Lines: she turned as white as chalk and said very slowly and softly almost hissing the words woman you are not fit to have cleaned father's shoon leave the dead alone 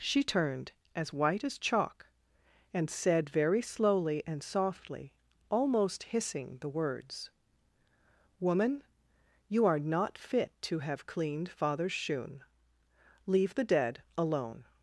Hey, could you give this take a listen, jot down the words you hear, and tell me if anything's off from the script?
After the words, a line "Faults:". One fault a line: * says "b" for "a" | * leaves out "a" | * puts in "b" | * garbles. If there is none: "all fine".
she turned as white as chalk and said very slowly and softly almost hissing the words woman you are not fit to have cleaned father's shoon leave the dead alone
Faults:
all fine